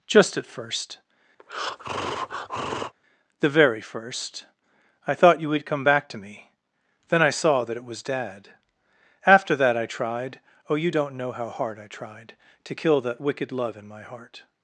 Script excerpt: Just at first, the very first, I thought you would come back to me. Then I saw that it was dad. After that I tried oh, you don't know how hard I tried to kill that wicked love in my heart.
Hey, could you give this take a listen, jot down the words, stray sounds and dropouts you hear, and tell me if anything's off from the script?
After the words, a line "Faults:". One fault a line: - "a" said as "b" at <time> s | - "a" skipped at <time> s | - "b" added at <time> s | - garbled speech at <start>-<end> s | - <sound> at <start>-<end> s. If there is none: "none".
Just at first, the very first, I thought you would come back to me. Then I saw that it was dad. After that I tried oh, you don't know how hard I tried to kill that wicked love in my heart.
Faults:
- breath at 1.4-2.9 s